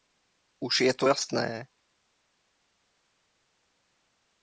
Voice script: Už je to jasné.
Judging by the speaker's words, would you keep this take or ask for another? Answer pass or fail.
pass